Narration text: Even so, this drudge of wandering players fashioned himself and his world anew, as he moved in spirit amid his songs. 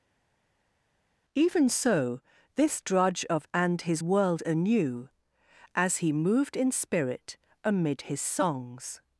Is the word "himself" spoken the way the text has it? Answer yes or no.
no